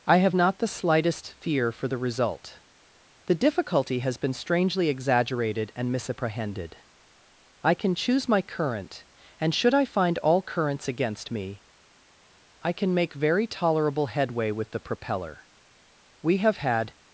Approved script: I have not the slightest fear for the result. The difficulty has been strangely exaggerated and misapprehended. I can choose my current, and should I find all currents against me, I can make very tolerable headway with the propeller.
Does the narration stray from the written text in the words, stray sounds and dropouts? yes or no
yes